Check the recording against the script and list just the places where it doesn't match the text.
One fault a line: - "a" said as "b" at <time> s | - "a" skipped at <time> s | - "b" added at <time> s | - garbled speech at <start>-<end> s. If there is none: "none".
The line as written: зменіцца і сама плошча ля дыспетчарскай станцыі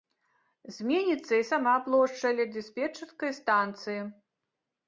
none